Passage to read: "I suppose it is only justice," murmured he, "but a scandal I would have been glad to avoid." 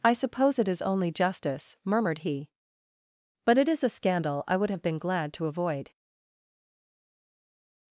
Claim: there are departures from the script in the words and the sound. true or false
true